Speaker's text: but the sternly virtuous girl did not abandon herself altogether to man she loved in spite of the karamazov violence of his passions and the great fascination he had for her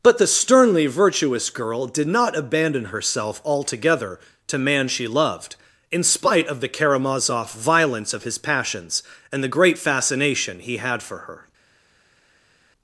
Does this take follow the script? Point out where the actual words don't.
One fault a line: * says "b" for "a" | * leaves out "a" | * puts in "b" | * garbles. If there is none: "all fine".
all fine